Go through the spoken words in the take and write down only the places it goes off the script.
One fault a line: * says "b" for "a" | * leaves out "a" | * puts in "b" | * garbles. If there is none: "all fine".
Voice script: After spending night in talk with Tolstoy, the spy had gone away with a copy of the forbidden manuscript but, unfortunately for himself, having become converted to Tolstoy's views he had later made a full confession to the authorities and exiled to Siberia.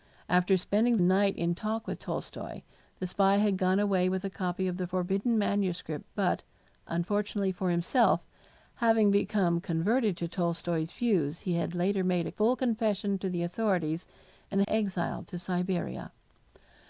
all fine